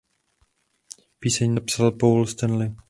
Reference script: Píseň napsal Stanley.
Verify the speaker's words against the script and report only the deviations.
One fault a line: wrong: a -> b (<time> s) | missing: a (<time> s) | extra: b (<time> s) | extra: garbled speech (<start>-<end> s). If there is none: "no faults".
extra: Paul (1.9 s)